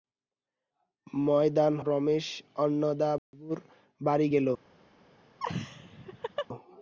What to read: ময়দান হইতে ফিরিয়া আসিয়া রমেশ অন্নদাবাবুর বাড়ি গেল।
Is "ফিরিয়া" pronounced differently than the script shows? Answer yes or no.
yes